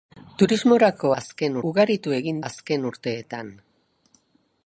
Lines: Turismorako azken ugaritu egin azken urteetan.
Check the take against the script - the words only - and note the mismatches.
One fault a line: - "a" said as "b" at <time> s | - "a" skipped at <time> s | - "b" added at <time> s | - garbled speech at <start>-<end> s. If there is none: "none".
none